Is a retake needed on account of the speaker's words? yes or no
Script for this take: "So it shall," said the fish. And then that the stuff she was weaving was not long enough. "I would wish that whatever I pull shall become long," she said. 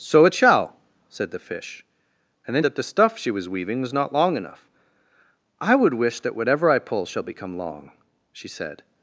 no